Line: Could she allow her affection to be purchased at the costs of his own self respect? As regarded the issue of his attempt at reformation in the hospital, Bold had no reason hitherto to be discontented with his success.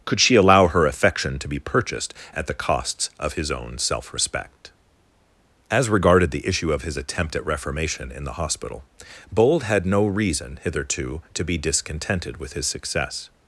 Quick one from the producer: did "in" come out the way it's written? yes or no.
yes